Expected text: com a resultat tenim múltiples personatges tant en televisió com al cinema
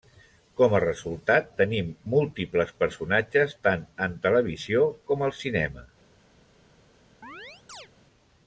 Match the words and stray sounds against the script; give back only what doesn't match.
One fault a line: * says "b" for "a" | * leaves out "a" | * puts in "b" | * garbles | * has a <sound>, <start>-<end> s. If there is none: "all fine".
* has a chirp, 7.2-7.9 s